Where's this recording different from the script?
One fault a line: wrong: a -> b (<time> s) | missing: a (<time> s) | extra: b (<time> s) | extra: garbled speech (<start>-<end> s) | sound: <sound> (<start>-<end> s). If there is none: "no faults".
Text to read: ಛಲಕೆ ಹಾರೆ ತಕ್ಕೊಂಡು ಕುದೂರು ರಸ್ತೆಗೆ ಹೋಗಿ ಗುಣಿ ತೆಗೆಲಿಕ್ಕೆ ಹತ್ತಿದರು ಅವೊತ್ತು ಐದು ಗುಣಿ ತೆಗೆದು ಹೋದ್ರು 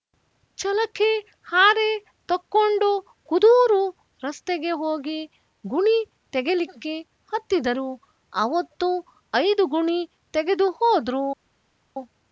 no faults